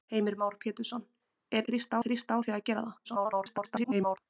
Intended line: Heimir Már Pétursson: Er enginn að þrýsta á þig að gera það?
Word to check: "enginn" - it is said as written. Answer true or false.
false